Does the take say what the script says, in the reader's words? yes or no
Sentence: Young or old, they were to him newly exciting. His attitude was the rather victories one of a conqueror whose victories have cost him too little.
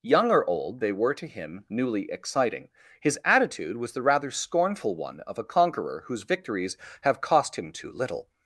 no